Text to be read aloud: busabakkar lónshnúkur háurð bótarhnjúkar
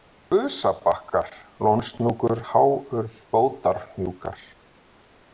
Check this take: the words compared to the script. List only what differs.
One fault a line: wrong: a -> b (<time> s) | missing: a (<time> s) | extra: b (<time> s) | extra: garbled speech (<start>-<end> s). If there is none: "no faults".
no faults